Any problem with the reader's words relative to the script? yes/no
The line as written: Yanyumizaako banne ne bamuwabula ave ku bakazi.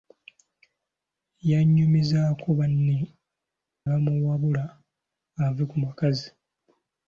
yes